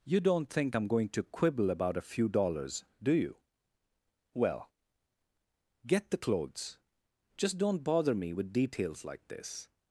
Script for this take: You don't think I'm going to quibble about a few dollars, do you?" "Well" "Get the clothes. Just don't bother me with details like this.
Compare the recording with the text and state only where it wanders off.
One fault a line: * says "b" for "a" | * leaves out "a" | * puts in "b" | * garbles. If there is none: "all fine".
all fine